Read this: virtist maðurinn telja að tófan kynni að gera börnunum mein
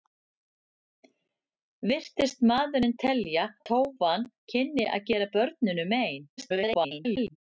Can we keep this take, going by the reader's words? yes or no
no